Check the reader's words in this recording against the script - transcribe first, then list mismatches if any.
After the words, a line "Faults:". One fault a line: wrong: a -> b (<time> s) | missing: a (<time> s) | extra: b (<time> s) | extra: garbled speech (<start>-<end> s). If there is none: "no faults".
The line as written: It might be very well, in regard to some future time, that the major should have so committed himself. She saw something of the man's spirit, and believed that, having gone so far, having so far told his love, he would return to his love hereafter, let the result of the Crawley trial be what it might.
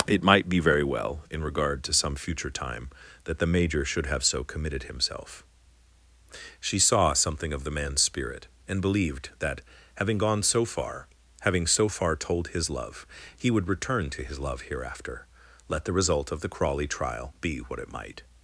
It might be very well, in regard to some future time, that the major should have so committed himself. She saw something of the man's spirit, and believed that, having gone so far, having so far told his love, he would return to his love hereafter, let the result of the Crawley trial be what it might.
Faults:
no faults